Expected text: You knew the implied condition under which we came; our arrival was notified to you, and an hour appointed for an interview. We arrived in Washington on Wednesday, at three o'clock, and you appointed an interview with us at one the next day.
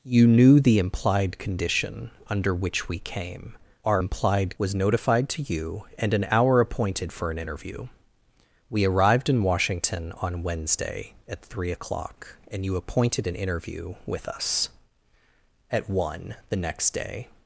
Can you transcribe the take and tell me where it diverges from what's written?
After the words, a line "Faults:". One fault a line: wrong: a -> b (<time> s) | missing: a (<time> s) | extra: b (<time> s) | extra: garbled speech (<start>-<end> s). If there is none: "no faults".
You knew the implied condition under which we came; our implied was notified to you, and an hour appointed for an interview. We arrived in Washington on Wednesday, at three o'clock, and you appointed an interview with us at one the next day.
Faults:
wrong: arrival -> implied (4.0 s)